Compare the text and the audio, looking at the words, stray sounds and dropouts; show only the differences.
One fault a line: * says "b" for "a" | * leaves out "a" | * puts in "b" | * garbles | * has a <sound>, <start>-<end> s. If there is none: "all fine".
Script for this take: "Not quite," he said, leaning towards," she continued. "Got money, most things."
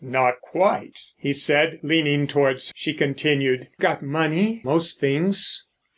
all fine